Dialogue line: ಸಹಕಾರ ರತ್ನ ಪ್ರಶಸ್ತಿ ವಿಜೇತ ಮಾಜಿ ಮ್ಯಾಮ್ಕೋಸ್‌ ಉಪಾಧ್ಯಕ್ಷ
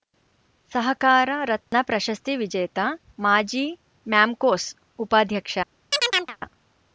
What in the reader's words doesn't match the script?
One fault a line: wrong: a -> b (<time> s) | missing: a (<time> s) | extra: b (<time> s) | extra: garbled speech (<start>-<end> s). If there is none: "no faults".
no faults